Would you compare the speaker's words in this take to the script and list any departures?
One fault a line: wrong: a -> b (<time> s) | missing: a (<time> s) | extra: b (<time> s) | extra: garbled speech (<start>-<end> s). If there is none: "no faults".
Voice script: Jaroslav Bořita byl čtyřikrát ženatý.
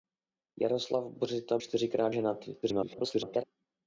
missing: byl (1.6 s)
extra: garbled speech (2.6-3.4 s)